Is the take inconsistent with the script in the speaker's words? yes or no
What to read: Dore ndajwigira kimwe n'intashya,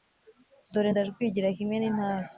no